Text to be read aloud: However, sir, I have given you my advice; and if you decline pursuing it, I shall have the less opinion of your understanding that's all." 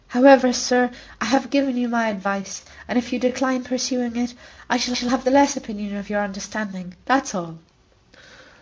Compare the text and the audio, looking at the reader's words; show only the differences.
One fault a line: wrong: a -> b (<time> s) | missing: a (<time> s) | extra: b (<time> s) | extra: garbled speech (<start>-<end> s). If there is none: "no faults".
extra: shall (4.9 s)